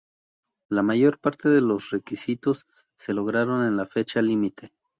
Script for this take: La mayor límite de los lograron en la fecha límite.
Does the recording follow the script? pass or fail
fail